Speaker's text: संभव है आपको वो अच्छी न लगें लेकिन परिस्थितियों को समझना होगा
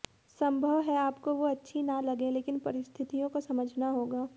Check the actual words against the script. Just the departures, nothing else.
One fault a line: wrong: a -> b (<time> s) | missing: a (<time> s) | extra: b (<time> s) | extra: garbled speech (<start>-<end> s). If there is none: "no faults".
no faults